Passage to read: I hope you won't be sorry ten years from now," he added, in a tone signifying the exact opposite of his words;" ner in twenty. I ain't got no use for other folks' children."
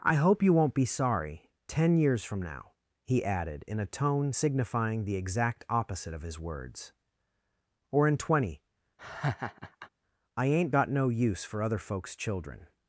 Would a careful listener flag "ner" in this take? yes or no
yes